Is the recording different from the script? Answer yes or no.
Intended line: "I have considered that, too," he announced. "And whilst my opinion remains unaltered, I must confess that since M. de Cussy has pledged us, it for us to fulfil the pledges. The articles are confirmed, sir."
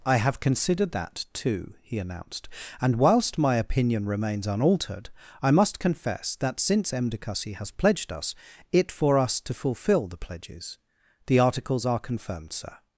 no